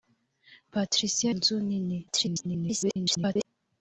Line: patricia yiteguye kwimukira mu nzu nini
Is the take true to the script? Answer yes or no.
no